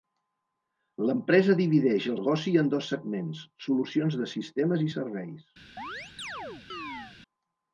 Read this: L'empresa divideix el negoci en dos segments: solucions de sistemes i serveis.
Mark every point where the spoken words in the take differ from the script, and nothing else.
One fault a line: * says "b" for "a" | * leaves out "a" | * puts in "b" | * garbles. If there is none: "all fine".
all fine